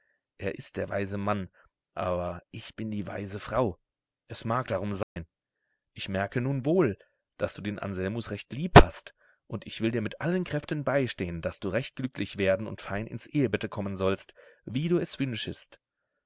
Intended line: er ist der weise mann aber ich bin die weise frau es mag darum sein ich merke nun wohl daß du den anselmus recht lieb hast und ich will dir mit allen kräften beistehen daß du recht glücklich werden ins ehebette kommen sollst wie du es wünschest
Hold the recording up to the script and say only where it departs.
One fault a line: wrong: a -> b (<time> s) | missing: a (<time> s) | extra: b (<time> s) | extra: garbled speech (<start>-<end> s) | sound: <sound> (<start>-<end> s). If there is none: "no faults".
sound: dropout (5.0-5.2 s)
extra: und fein (12.7 s)